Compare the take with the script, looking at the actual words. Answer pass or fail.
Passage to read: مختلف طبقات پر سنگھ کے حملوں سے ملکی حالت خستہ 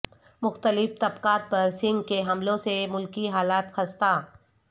pass